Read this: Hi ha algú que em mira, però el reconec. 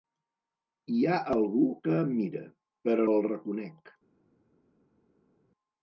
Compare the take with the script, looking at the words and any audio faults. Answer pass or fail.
pass